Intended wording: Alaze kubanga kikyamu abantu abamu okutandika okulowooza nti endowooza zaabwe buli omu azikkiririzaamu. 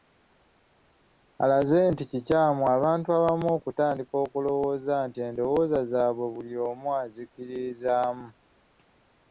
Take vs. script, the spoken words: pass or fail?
fail